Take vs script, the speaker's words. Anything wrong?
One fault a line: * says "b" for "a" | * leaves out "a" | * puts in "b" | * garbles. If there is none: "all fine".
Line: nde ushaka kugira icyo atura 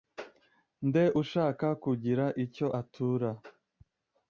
all fine